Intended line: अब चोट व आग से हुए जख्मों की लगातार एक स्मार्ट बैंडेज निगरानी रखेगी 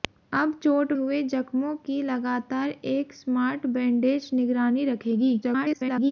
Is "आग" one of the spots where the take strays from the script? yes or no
yes